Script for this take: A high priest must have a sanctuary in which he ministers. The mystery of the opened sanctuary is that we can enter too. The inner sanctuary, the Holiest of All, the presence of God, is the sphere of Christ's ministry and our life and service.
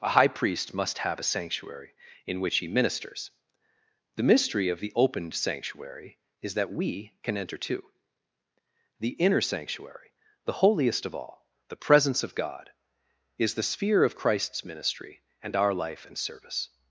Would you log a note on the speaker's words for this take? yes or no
no